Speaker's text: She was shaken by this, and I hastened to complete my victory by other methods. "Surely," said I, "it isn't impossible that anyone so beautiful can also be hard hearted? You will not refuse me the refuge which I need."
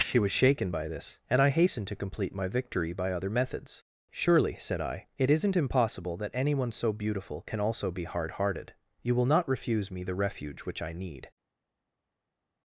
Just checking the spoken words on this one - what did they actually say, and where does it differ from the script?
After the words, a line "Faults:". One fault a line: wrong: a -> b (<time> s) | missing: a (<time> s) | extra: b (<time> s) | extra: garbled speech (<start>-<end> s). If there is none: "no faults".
She was shaken by this, and I hastened to complete my victory by other methods. "Surely," said I, "it isn't impossible that anyone so beautiful can also be hard hearted? You will not refuse me the refuge which I need."
Faults:
no faults